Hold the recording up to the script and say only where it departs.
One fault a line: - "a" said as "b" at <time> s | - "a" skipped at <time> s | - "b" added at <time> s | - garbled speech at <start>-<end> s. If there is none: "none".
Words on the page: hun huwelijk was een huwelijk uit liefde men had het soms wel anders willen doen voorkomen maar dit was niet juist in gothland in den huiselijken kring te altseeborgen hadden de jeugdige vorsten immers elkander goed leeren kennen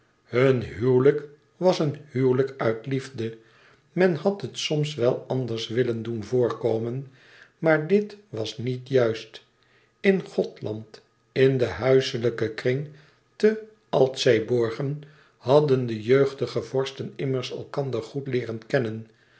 none